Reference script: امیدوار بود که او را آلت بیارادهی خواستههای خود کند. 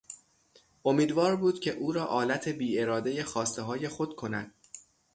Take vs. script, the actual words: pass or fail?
pass